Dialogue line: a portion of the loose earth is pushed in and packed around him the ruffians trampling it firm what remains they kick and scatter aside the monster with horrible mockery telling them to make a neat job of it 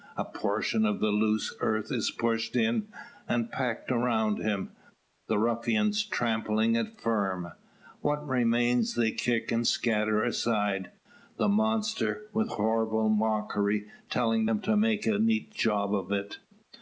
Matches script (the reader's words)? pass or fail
pass